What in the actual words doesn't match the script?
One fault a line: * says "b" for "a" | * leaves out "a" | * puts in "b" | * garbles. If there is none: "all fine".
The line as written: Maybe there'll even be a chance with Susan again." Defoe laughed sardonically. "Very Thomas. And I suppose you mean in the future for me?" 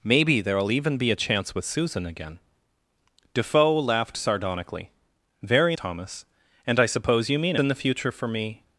all fine